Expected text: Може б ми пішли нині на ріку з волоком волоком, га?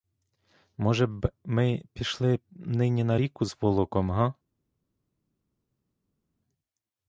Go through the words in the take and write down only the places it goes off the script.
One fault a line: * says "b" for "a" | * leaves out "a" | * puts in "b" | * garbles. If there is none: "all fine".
* leaves out "волоком"